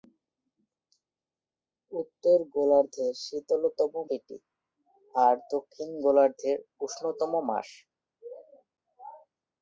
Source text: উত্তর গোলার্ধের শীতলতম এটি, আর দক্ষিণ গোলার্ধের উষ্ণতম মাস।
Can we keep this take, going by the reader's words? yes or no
yes